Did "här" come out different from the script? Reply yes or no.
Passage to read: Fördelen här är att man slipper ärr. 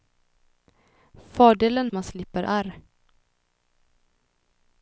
yes